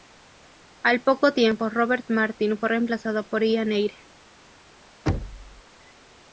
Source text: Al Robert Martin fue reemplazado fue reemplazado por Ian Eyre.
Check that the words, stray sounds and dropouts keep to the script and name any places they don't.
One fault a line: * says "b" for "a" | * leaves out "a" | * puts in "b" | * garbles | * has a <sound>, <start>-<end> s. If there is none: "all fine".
* puts in "poco tiempo"
* leaves out "fue reemplazado"
* has a thud, 5.1-5.6 s